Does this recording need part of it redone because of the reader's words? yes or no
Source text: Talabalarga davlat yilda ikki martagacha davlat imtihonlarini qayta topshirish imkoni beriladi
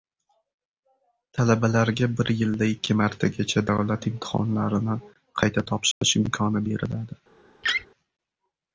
yes